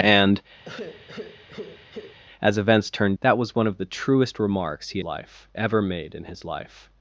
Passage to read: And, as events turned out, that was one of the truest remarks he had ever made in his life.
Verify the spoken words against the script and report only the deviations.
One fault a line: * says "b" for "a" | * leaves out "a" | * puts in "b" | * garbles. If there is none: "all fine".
* leaves out "out"
* says "life" for "had"